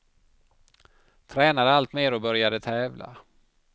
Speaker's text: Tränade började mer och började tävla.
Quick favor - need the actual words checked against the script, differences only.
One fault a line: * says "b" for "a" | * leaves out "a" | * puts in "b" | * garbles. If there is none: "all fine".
* says "allt" for "började"